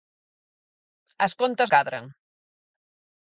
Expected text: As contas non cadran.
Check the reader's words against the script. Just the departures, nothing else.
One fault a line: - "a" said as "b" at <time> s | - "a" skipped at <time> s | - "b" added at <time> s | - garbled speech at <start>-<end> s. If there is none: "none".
- "non" skipped at 1.7 s